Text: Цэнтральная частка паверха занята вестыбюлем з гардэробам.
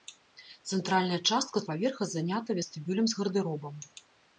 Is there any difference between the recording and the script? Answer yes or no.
no